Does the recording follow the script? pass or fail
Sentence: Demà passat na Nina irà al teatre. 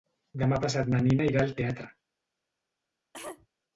pass